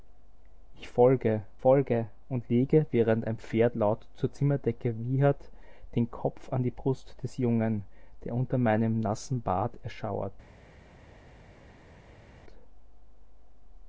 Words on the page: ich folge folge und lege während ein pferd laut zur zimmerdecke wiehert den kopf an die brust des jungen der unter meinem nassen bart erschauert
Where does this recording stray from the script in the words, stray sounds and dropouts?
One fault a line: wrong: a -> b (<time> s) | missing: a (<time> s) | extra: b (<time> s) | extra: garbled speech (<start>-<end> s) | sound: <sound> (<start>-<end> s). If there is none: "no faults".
no faults